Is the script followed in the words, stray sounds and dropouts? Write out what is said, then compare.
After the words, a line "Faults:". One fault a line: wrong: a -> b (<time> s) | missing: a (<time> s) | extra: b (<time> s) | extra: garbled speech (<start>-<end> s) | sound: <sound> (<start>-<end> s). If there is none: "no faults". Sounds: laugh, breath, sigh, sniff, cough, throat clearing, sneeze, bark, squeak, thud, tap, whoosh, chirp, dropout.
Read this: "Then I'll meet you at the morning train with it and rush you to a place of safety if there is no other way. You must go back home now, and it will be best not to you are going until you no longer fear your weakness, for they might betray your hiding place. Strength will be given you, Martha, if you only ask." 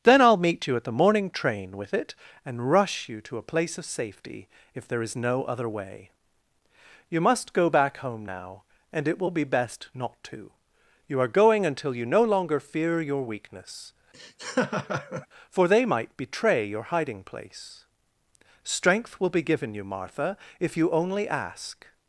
"Then I'll meet you at the morning train with it and rush you to a place of safety if there is no other way. You must go back home now, and it will be best not to you are going until you no longer fear your weakness, for they might betray your hiding place. Strength will be given you, Martha, if you only ask."
Faults:
sound: laugh (14.1-15.3 s)